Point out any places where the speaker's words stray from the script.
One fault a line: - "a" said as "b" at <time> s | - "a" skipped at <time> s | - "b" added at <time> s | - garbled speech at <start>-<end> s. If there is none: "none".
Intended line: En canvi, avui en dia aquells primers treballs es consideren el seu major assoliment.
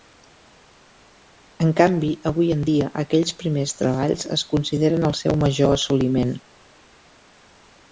none